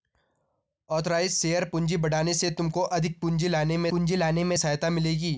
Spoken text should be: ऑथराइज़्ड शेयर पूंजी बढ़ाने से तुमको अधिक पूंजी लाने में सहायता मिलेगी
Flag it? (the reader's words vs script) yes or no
yes